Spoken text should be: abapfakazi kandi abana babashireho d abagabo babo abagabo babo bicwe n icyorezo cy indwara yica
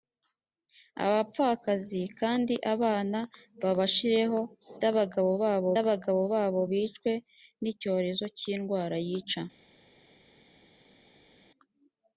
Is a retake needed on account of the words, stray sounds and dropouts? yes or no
no